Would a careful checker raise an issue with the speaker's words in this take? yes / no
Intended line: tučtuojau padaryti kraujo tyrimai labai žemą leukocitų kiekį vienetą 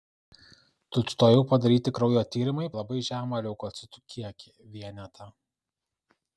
no